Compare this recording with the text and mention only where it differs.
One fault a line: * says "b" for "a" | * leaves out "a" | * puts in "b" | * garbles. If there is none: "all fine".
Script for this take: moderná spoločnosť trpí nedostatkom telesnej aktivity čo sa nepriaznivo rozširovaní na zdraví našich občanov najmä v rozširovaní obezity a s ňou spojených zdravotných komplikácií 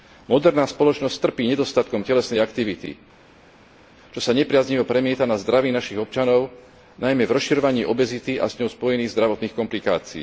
* says "premieta" for "rozširovaní"